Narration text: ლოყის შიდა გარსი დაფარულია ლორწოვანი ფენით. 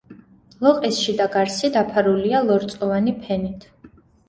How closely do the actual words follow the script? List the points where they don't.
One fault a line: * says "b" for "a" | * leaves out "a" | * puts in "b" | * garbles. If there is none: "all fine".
all fine